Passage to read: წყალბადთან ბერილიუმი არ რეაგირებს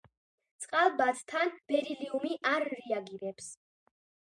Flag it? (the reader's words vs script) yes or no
no